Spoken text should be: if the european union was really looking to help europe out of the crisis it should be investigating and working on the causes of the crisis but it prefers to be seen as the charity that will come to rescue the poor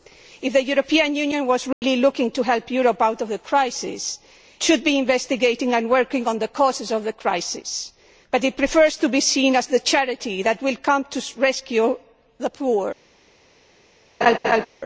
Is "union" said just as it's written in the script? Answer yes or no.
yes